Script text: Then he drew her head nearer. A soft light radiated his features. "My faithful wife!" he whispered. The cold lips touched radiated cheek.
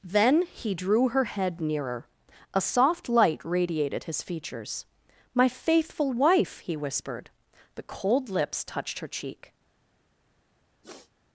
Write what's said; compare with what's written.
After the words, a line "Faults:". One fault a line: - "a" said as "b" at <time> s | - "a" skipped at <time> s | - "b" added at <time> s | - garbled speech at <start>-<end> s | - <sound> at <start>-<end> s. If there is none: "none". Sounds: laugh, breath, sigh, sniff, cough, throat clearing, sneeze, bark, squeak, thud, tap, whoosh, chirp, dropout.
Then he drew her head nearer. A soft light radiated his features. "My faithful wife!" he whispered. The cold lips touched her cheek.
Faults:
- "radiated" said as "her" at 9.0 s
- sniff at 10.8-11.1 s